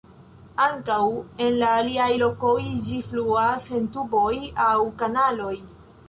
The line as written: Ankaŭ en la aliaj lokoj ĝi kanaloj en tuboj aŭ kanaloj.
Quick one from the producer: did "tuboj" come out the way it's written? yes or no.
yes